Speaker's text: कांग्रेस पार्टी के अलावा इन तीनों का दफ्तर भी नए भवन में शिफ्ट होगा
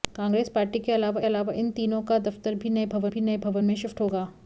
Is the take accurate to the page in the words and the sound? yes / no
no